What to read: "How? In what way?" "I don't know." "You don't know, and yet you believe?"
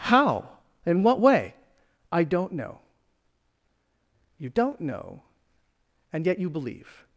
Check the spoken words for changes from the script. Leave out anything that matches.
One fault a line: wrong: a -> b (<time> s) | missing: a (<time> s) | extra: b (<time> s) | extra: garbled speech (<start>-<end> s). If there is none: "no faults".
no faults